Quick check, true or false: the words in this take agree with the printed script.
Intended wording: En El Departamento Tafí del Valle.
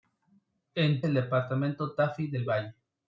true